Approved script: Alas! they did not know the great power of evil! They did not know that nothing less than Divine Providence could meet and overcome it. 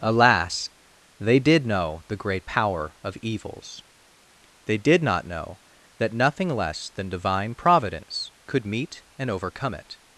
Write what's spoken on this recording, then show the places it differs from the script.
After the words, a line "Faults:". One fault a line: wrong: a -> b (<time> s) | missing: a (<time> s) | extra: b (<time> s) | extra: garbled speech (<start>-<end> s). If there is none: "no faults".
Alas! they did know the great power of evils! They did not know that nothing less than Divine Providence could meet and overcome it.
Faults:
missing: not (1.6 s)
wrong: evil -> evils (3.2 s)